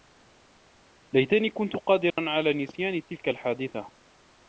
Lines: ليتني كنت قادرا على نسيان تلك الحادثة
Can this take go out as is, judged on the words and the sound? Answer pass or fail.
fail